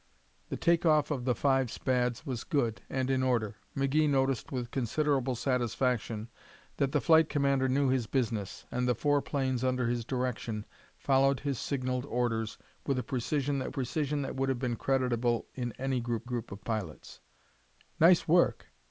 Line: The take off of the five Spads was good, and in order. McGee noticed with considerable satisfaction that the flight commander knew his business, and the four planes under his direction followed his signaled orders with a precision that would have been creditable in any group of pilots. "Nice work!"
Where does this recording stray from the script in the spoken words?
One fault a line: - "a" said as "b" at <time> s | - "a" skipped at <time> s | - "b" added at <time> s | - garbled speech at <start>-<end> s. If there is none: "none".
- "precision that" added at 13.7 s
- "group" added at 16.2 s